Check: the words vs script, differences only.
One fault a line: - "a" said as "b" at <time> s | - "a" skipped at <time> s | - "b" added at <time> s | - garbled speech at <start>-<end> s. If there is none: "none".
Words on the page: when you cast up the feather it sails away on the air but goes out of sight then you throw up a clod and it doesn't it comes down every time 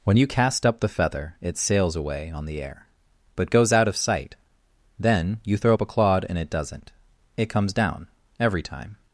none